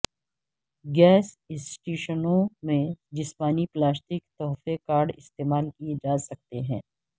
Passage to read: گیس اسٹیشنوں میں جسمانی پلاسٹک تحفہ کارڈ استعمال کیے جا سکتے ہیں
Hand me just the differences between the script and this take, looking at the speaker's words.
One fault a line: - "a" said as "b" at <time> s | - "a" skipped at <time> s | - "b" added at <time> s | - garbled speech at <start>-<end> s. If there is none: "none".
none